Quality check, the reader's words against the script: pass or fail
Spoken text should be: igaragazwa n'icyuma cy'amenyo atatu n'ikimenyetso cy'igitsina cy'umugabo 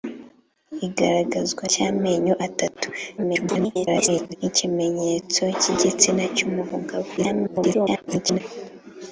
fail